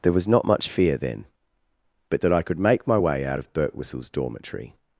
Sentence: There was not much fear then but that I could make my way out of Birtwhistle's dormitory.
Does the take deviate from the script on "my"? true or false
false